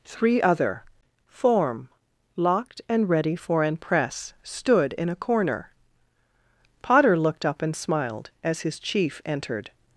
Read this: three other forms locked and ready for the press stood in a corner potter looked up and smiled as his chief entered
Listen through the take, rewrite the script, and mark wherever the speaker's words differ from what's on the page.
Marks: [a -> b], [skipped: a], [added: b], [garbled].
three other [forms -> form] locked and ready for [the -> an] press stood in a corner potter looked up and smiled as his chief entered